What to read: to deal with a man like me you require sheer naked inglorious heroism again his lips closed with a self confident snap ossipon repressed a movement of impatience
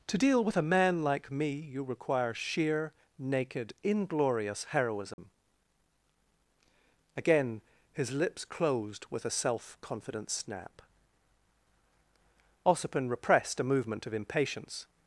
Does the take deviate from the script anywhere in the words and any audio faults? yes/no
yes